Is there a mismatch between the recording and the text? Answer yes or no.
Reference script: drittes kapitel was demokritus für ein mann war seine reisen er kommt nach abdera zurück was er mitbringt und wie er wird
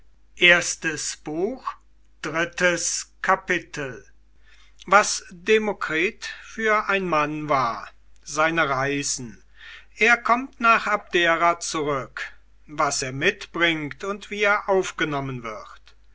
yes